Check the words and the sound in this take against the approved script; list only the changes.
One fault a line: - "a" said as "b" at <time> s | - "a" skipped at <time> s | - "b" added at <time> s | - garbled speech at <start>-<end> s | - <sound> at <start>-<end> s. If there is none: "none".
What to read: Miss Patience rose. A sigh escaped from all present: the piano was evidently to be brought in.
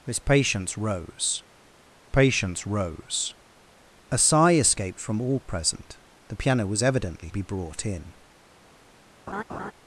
- "Patience rose" added at 2.1 s
- "to" skipped at 7.3 s
- laugh at 9.3-9.7 s